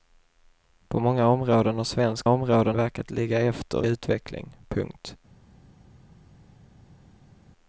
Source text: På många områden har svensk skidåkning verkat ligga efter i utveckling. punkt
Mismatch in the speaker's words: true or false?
true